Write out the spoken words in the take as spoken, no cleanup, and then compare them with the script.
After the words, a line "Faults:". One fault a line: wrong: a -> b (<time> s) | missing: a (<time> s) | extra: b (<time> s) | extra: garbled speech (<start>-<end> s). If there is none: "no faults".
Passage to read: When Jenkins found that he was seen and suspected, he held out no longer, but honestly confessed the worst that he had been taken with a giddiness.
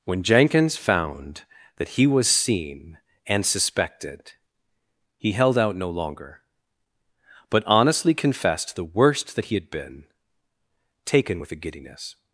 When Jenkins found that he was seen and suspected, he held out no longer, but honestly confessed the worst that he had been taken with a giddiness.
Faults:
no faults